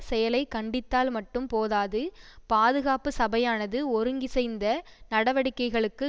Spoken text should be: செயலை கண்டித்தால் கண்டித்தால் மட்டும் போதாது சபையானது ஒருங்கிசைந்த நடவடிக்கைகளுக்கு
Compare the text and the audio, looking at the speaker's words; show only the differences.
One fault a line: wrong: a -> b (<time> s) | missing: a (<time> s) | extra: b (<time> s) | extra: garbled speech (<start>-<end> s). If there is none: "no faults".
missing: கண்டித்தால் (1.1 s)
extra: பாதுகாப்பு (2.5 s)